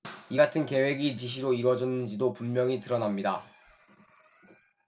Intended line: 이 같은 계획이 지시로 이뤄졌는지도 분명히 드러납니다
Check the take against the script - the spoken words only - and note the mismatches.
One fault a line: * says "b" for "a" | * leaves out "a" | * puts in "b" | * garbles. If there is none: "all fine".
all fine